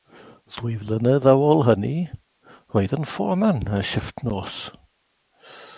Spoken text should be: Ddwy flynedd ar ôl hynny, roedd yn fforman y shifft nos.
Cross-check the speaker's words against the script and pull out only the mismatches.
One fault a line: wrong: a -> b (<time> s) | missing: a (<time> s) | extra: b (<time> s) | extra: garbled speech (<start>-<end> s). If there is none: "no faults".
no faults